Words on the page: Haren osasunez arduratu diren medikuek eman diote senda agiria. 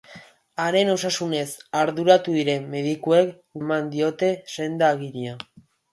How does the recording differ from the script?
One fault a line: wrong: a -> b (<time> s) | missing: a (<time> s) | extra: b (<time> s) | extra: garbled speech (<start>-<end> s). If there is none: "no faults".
no faults